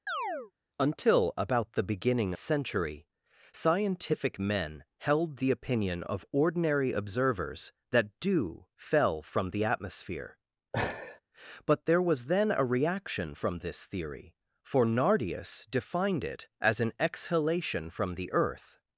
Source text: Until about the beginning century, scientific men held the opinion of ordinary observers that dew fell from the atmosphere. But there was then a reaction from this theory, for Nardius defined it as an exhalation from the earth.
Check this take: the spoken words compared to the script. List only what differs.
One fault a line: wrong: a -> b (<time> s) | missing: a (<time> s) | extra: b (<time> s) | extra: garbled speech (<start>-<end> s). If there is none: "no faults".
no faults